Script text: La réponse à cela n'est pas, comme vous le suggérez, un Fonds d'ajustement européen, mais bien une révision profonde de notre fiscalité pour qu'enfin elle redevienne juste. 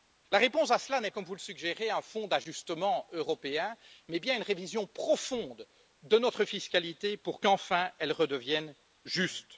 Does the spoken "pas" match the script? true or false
false